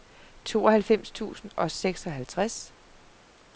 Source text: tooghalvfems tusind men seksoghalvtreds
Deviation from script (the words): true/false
true